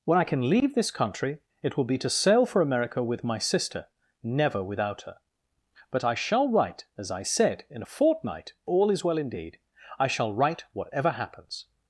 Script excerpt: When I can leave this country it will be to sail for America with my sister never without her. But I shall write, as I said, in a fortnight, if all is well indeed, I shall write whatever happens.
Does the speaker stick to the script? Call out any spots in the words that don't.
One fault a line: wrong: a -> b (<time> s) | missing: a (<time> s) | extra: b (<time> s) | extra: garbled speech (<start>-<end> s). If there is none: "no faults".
missing: if (8.5 s)